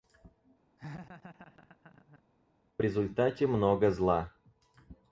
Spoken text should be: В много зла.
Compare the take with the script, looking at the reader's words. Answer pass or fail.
fail